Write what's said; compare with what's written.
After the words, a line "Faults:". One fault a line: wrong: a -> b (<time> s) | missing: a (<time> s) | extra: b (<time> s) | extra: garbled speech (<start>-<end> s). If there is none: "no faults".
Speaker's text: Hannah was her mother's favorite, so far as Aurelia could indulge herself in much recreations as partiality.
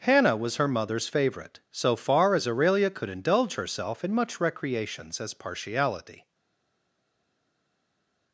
Hannah was her mother's favorite, so far as Aurelia could indulge herself in much recreations as partiality.
Faults:
no faults